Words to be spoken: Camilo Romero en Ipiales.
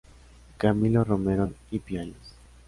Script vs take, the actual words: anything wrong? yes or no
no